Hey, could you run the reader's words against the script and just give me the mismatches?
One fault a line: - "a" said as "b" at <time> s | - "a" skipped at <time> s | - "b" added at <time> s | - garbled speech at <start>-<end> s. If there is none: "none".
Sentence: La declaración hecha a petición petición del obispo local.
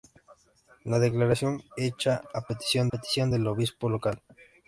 none